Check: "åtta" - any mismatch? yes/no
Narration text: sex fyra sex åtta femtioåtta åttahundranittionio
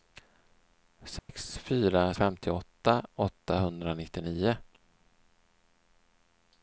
yes